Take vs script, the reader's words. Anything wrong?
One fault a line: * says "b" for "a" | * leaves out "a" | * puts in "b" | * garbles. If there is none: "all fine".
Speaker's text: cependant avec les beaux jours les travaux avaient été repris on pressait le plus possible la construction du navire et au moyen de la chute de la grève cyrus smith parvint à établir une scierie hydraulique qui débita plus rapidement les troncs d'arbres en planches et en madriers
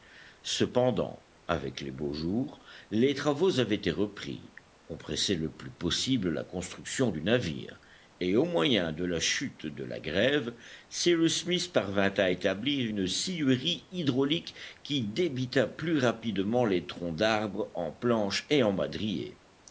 all fine